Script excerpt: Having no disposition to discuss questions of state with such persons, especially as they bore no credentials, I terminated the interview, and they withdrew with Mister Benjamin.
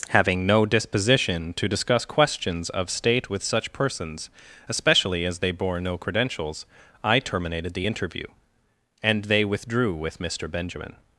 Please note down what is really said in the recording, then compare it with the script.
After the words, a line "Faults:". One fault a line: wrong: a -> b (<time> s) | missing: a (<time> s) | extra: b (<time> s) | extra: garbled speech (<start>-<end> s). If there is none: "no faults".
Having no disposition to discuss questions of state with such persons, especially as they bore no credentials, I terminated the interview, and they withdrew with Mister Benjamin.
Faults:
no faults